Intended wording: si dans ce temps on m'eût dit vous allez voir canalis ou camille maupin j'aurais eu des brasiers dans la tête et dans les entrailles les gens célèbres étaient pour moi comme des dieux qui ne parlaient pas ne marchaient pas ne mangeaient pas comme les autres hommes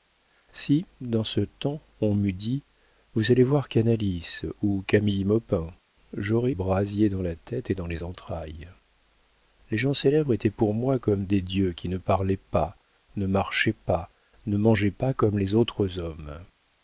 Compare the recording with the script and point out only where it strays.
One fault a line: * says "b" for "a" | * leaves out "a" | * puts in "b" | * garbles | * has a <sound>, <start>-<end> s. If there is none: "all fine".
* leaves out "eu des"